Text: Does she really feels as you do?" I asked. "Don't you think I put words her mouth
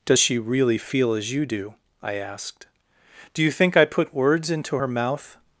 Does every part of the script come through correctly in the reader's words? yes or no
no